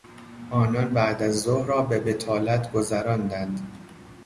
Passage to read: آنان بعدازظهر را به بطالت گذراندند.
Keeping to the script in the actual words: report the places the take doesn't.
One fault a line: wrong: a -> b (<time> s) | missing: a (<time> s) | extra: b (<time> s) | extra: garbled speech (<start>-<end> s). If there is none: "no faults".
no faults